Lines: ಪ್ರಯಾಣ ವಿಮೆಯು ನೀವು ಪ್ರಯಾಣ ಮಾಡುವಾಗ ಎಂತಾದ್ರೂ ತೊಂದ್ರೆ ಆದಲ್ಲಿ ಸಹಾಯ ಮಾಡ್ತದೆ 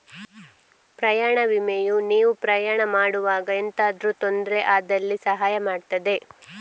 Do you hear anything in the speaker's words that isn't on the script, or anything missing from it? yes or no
no